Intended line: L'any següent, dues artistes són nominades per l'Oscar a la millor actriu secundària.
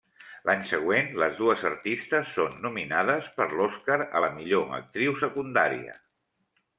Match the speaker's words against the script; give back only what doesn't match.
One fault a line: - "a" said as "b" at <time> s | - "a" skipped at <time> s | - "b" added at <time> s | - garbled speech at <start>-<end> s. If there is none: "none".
- "les" added at 1.2 s